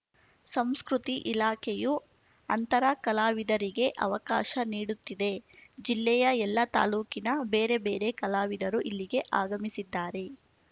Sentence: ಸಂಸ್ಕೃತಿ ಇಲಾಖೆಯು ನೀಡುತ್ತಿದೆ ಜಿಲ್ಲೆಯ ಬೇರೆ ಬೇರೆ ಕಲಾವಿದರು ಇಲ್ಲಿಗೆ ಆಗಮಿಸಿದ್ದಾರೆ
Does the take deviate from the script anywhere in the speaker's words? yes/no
yes